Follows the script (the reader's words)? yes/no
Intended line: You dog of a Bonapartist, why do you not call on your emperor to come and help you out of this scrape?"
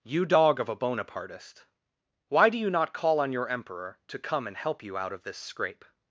yes